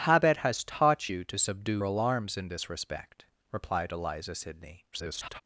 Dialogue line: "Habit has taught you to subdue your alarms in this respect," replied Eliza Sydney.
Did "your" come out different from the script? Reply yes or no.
yes